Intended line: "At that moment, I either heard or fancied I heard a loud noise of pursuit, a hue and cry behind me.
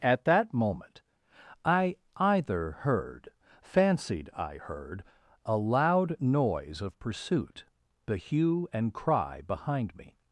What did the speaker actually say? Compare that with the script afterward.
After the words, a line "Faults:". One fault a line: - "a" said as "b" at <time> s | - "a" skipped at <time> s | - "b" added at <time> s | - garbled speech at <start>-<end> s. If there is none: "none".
"At that moment, I either heard fancied I heard a loud noise of pursuit, the hue and cry behind me.
Faults:
- "or" skipped at 3.3 s
- "a" said as "the" at 8.1 s